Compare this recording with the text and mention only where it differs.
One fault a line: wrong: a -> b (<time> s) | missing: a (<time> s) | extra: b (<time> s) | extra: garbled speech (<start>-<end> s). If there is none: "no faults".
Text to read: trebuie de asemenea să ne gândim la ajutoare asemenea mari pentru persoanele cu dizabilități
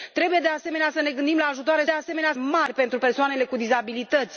no faults